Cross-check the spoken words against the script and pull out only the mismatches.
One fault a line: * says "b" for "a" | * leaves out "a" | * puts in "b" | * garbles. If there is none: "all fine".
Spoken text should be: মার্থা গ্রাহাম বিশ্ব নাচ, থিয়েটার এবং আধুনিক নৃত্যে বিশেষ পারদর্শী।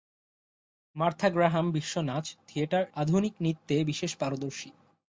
* leaves out "এবং"